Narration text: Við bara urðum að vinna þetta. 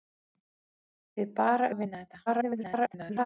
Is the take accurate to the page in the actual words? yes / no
no